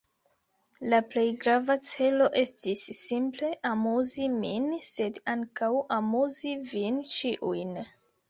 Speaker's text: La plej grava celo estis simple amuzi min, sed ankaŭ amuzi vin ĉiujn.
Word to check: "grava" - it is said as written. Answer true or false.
true